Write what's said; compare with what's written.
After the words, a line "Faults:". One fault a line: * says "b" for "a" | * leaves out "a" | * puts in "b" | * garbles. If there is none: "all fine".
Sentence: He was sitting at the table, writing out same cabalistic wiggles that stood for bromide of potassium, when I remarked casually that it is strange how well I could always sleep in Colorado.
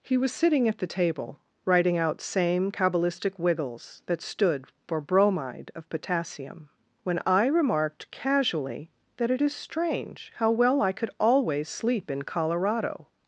He was sitting at the table, writing out same cabalistic wiggles that stood for bromide of potassium, when I remarked casually that it is strange how well I could always sleep in Colorado.
Faults:
all fine